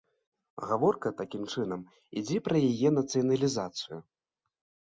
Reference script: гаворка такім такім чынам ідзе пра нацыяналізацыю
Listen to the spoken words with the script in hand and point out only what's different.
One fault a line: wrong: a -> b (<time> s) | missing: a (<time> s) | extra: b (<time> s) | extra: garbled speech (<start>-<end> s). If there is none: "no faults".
missing: такім (1.4 s)
extra: яе (2.7 s)